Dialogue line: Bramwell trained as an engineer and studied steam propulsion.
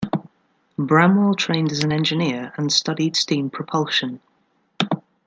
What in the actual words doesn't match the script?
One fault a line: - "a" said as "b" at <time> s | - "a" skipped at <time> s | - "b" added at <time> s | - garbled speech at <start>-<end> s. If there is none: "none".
none